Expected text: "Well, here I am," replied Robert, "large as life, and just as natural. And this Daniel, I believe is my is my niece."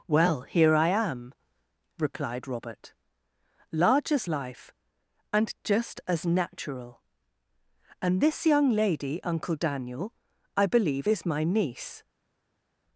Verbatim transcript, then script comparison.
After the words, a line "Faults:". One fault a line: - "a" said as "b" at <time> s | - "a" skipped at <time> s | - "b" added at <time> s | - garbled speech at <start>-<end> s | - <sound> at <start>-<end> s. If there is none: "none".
"Well, here I am," replied Robert, "large as life, and just as natural. And this young lady, Uncle Daniel, I believe is my niece."
Faults:
- "young lady Uncle" added at 8.5 s
- "is my" skipped at 11.4 s